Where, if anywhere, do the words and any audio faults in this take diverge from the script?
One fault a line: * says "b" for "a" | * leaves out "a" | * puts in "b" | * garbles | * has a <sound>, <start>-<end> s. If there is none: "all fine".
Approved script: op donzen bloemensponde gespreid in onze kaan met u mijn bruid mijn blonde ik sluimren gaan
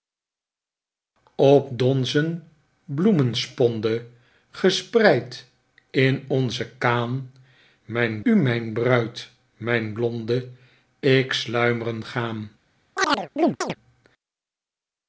* says "mijn" for "met"
* has a chirp, 13.0-13.8 s